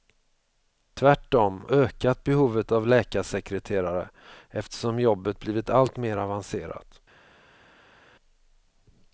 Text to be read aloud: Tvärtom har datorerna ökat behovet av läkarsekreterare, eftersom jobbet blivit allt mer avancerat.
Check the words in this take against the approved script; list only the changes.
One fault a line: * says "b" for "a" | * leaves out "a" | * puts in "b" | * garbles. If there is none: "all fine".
* leaves out "har datorerna"